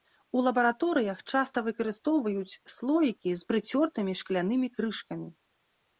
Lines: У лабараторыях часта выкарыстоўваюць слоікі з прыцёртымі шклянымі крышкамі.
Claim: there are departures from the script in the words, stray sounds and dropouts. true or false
false